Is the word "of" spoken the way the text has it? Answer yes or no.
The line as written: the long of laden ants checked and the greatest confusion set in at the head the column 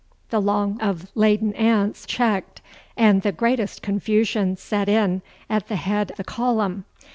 yes